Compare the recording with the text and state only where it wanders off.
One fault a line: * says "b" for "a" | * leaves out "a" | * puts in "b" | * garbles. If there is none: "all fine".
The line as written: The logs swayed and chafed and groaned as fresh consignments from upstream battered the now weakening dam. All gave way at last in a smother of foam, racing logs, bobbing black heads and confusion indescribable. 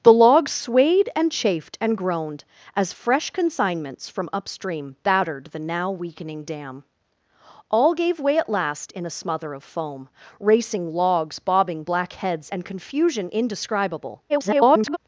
* garbles